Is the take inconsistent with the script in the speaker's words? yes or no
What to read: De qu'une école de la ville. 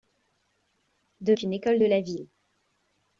no